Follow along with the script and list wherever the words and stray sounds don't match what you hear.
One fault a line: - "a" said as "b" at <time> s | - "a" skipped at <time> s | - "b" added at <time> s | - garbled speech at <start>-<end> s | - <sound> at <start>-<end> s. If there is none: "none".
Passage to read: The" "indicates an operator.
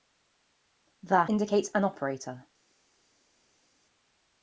none